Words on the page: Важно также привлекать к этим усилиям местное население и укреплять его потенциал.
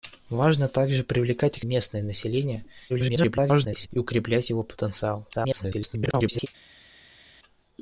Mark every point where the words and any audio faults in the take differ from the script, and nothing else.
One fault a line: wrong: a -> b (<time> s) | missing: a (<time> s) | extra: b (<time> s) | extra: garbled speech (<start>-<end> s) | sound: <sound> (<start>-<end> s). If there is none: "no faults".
missing: этим усилиям (1.6 s)
extra: garbled speech (2.9-3.9 s)
extra: garbled speech (5.3-6.5 s)